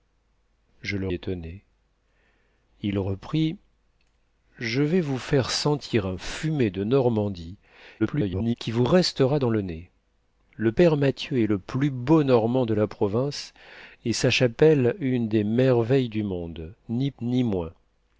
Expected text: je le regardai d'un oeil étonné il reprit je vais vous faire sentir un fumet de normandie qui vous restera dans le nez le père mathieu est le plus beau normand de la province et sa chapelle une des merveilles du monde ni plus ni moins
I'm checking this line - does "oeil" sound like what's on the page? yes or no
no